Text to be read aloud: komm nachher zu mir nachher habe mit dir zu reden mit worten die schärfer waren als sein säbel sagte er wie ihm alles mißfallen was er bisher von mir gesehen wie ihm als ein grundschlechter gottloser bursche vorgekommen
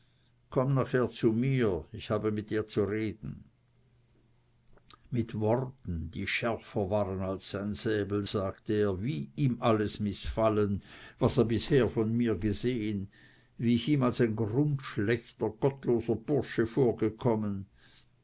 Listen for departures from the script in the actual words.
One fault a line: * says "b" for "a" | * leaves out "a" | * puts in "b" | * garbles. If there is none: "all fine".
* says "ich" for "nachher"
* puts in "ich"